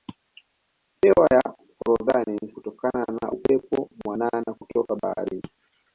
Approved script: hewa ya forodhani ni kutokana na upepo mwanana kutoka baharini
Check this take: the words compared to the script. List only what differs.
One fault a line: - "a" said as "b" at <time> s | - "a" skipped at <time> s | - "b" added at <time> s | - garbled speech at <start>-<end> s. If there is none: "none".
none